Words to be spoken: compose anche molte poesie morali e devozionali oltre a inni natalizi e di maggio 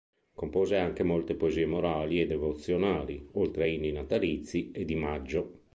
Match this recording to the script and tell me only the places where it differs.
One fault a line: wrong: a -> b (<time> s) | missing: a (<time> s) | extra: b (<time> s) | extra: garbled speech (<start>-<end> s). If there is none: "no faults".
no faults